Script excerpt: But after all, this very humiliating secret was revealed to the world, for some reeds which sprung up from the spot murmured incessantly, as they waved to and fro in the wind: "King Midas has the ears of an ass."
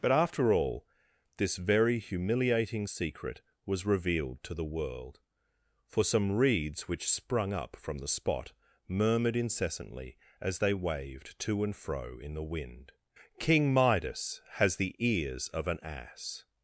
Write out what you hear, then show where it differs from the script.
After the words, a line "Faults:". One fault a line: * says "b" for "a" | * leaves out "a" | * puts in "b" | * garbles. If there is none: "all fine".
But after all, this very humiliating secret was revealed to the world, for some reeds which sprung up from the spot murmured incessantly, as they waved to and fro in the wind: "King Midas has the ears of an ass."
Faults:
all fine